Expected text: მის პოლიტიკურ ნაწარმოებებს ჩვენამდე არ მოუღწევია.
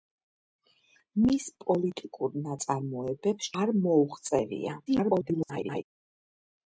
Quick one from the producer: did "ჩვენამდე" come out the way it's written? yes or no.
no